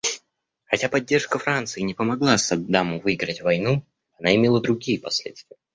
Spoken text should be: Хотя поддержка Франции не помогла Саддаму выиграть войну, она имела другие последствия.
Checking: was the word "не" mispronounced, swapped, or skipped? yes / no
no